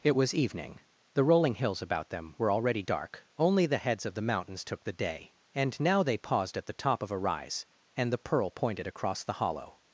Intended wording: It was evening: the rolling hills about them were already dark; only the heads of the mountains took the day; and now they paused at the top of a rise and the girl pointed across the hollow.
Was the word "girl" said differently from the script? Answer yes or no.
yes